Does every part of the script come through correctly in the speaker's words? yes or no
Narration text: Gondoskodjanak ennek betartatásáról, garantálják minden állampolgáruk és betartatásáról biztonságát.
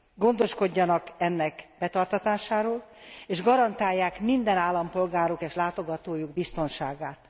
no